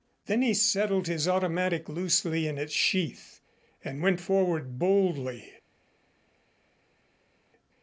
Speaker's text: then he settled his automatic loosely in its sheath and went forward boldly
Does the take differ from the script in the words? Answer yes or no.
no